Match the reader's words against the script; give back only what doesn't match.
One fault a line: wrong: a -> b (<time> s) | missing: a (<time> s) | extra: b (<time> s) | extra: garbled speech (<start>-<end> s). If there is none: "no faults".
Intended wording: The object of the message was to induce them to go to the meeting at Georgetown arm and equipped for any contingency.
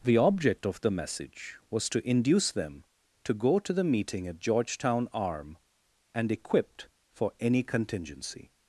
no faults